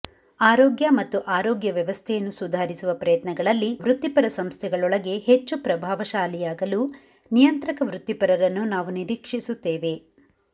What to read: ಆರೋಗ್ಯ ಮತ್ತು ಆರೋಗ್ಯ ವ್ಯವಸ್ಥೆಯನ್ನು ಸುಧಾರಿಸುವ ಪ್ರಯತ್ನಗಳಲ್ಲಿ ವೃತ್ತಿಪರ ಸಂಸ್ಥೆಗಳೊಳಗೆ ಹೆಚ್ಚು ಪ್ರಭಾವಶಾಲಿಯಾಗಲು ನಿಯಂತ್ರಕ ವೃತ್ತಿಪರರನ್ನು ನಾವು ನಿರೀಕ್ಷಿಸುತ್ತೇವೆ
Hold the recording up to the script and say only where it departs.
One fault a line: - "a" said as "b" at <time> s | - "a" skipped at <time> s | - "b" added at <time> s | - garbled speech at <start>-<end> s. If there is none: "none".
none